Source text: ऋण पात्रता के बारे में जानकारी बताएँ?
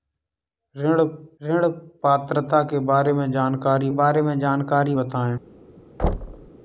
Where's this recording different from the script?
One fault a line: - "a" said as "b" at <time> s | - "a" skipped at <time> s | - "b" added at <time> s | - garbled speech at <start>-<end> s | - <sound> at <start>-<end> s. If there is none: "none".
- "ऋण" added at 1.4 s
- "बारे में जानकारी" added at 4.0 s
- thud at 6.0-6.5 s